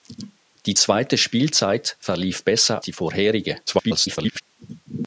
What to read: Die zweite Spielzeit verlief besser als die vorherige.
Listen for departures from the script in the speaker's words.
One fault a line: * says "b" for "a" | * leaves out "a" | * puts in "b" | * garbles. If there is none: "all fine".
* leaves out "als"
* garbles